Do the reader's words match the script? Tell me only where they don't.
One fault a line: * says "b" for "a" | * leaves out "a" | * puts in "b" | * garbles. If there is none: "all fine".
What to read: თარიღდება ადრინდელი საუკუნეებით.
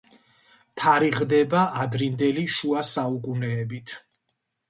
* puts in "შუა"